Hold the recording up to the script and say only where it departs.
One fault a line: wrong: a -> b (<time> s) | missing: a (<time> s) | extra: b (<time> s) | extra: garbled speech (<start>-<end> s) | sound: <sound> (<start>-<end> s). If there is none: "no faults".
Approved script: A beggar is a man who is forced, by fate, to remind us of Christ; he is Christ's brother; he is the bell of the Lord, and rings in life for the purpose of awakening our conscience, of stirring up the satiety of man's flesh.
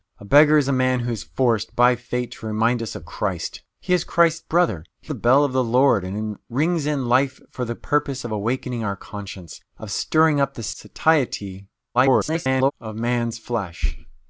missing: is (5.1 s)
extra: garbled speech (11.9-12.7 s)